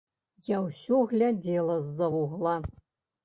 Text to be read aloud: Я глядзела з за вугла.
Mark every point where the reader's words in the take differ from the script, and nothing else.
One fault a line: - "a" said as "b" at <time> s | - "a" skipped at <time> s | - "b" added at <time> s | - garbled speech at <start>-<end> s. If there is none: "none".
- "ўсё" added at 0.7 s